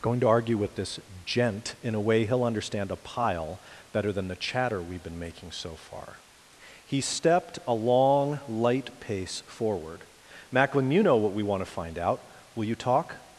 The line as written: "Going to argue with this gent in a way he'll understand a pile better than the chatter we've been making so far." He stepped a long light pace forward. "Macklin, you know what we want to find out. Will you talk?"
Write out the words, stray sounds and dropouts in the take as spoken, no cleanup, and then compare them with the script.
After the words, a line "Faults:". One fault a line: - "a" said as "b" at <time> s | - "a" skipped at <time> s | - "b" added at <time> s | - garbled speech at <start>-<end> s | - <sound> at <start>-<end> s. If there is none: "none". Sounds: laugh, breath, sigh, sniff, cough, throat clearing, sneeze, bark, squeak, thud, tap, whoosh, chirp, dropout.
"Going to argue with this gent in a way he'll understand a pile better than the chatter we've been making so far." He stepped a long light pace forward. "Macklin, you know what we want to find out. Will you talk?"
Faults:
none